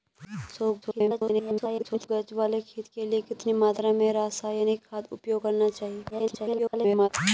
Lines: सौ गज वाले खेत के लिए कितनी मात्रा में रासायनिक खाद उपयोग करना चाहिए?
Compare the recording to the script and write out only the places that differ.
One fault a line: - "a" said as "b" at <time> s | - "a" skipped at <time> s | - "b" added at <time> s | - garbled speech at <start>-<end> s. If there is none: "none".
- garbled speech at 0.8-2.1 s
- garbled speech at 6.1-7.1 s